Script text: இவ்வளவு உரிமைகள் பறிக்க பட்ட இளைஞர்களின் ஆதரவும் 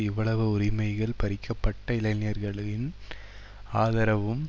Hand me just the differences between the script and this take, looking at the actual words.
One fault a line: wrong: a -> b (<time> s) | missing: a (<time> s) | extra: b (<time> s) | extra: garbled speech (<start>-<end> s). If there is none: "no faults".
no faults